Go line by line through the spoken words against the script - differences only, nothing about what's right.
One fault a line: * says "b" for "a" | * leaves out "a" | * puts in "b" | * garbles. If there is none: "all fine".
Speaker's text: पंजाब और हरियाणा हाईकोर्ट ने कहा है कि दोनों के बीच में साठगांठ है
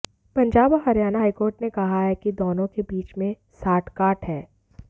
all fine